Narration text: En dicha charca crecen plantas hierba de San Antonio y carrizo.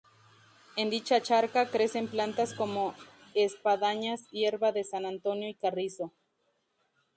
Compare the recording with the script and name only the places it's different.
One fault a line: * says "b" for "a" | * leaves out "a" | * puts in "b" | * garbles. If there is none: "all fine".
* puts in "como espadañas"